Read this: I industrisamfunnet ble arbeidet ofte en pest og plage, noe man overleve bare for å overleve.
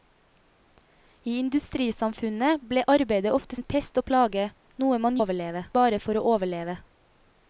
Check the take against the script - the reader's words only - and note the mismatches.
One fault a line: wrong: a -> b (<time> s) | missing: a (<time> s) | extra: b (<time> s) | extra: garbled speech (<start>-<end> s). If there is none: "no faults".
no faults